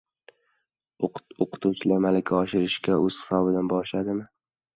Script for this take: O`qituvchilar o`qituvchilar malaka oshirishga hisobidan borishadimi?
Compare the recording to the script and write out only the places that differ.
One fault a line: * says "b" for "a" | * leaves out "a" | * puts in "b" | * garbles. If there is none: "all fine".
* leaves out "o`qituvchilar"
* puts in "o`z"